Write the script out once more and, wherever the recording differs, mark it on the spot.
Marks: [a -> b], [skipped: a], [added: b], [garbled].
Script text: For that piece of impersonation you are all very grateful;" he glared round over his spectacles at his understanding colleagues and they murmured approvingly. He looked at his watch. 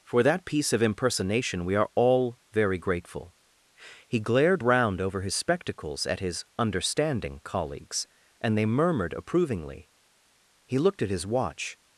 For that piece of impersonation [you -> we] are all very grateful;" he glared round over his spectacles at his understanding colleagues and they murmured approvingly. He looked at his watch.